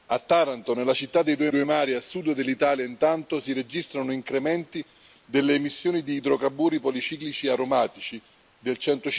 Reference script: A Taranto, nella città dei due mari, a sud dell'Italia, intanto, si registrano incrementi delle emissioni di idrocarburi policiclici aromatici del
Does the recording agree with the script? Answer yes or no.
no